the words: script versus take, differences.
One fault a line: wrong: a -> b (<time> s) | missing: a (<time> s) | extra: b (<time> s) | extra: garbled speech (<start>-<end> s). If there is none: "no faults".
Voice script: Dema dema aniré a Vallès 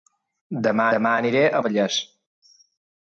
no faults